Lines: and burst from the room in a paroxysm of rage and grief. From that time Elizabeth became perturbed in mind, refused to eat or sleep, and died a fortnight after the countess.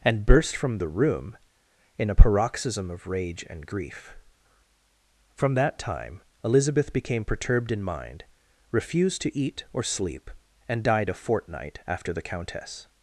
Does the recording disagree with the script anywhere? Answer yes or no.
no